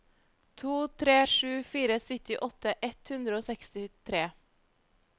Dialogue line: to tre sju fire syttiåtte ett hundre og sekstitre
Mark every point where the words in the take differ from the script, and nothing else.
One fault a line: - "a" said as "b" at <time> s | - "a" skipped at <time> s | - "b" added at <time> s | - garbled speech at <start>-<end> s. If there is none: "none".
none